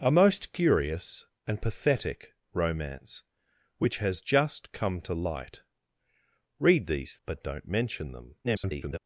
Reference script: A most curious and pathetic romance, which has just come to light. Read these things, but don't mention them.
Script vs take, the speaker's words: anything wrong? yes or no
yes